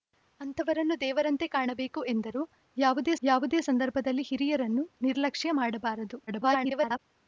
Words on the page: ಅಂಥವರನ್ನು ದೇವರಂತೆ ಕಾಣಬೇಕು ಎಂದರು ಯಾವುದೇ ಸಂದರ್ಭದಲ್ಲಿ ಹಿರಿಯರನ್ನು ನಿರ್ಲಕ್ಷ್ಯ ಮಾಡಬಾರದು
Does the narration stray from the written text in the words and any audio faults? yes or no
yes